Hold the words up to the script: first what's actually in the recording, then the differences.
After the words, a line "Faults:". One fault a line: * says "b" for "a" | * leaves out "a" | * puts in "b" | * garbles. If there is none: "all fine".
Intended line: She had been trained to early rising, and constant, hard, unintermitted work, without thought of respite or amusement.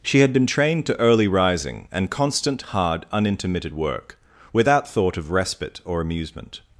She had been trained to early rising, and constant, hard, unintermitted work, without thought of respite or amusement.
Faults:
all fine